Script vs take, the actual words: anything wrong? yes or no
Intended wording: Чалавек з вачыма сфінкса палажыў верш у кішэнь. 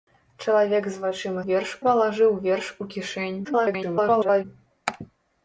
yes